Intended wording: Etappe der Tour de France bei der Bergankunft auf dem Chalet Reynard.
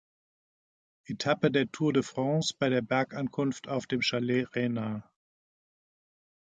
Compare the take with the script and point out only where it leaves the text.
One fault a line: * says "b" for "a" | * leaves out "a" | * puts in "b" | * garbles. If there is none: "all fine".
all fine